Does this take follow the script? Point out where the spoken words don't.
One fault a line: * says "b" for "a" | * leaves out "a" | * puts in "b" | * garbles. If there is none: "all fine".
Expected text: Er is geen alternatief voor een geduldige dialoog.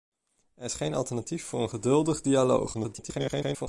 * garbles